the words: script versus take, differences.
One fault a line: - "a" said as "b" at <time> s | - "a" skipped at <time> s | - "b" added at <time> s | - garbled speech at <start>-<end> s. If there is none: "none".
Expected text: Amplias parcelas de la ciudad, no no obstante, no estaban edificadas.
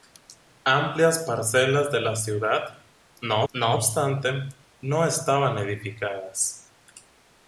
none